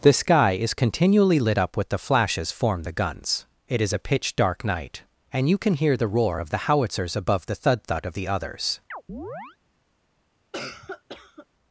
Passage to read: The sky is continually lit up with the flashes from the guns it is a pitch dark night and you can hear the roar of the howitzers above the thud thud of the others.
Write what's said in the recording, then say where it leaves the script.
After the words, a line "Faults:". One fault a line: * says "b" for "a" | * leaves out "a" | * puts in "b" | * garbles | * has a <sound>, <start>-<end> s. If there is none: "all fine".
The sky is continually lit up with the flashes form the guns it is a pitch dark night and you can hear the roar of the howitzers above the thud thud of the others.
Faults:
* says "form" for "from"
* has a chirp, 8.9-9.6 s
* has a cough, 10.5-11.5 s